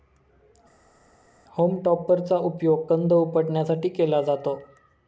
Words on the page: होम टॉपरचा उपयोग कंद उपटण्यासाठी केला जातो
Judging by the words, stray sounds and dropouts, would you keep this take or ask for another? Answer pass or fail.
pass